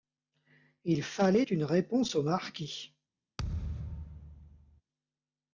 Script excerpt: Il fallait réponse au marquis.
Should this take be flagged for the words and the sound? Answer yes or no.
yes